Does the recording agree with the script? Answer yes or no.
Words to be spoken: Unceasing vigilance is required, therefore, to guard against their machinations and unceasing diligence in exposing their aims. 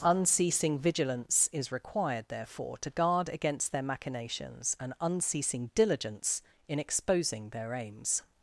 yes